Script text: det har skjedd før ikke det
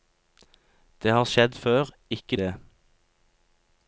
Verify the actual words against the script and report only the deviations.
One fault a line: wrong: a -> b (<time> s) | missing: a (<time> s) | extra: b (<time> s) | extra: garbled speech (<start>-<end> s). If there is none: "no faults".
no faults